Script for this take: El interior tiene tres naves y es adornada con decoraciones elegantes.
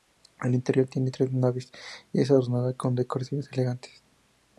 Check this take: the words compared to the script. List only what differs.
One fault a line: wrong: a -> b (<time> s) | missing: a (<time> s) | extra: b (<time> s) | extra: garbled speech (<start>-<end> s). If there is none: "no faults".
no faults